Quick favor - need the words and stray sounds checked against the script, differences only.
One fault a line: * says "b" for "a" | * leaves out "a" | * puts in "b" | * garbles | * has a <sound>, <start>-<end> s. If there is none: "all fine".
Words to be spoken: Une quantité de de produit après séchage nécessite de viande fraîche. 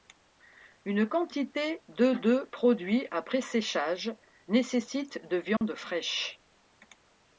* has a dropout, 5.6-5.6 s